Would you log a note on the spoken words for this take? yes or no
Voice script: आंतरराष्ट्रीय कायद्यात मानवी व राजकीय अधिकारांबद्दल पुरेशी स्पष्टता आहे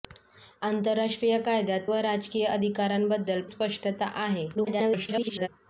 yes